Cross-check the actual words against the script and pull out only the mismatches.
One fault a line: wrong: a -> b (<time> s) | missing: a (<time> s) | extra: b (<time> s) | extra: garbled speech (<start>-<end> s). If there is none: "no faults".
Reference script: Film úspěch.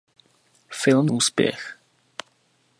no faults